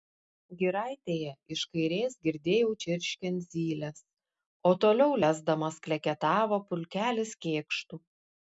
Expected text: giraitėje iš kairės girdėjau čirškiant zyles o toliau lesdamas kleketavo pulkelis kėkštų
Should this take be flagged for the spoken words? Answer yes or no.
no